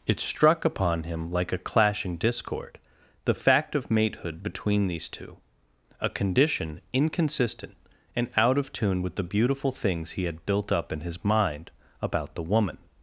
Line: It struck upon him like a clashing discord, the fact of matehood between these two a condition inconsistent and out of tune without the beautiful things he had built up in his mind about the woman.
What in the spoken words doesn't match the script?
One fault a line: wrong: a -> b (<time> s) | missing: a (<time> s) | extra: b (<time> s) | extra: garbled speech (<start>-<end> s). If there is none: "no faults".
wrong: without -> with (9.0 s)